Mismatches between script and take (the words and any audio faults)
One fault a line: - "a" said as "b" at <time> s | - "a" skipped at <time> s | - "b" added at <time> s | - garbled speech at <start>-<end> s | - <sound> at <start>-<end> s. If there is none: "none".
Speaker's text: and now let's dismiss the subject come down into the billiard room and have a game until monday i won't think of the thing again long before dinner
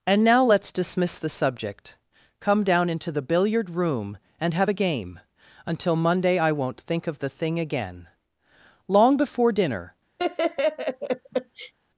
- laugh at 10.2-11.7 s